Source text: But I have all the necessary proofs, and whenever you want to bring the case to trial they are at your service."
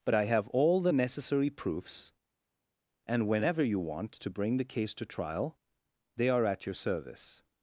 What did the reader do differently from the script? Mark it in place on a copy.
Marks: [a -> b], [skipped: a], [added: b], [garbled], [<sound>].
But I have all the necessary proofs, and whenever you want to bring the case to trial they are at your service."